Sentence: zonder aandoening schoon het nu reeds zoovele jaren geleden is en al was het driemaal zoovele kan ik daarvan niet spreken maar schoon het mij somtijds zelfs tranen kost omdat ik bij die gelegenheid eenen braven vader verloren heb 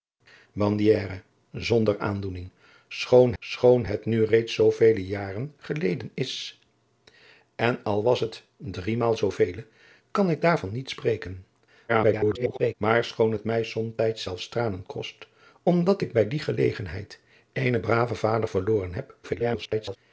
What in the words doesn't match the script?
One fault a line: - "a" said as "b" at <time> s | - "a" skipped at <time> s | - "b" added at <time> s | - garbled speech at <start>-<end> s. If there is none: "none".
- "schoon" added at 3.4 s
- garbled speech at 11.9-12.7 s
- garbled speech at 19.2-20.0 s